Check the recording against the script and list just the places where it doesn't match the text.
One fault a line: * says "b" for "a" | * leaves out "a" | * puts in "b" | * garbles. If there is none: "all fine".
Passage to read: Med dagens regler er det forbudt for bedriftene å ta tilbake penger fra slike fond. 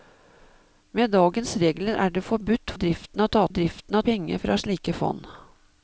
* leaves out "for"
* says "bedriftene" for "tilbake"